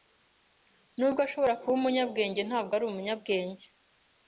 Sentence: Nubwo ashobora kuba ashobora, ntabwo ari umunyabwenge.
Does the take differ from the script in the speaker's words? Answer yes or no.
yes